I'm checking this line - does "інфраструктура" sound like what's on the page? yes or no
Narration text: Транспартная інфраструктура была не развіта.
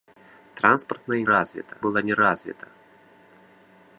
no